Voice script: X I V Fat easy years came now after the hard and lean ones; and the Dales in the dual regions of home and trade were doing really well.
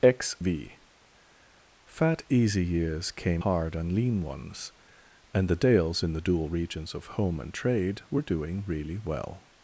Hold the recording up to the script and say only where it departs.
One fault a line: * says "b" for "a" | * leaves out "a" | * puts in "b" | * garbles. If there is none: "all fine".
* leaves out "I"
* leaves out "now after the"